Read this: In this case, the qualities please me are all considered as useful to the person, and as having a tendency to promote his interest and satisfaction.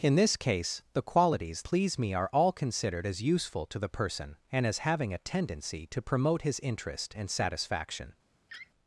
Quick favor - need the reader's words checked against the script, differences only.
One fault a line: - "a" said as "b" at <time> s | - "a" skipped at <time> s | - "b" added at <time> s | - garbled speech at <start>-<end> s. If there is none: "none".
none